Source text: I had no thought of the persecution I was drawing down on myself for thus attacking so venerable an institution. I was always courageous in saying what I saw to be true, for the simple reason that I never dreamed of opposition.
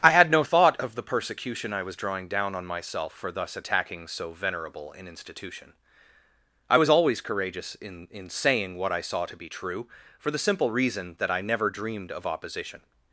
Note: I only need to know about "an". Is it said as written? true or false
true